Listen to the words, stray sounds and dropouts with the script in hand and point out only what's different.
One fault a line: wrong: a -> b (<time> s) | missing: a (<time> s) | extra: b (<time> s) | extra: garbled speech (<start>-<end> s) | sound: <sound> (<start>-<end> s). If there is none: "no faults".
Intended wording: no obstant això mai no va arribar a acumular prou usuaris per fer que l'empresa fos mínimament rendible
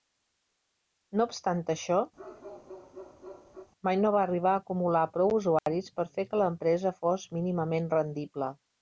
sound: bark (2.2-3.7 s)
sound: dropout (5.6-5.7 s)